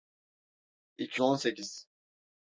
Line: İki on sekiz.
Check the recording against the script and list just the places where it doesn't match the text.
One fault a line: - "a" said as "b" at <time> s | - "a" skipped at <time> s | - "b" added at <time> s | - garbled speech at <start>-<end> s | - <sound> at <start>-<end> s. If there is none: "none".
none